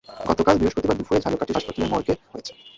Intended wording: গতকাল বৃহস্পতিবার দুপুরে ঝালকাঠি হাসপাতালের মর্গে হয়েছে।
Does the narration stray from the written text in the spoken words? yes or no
no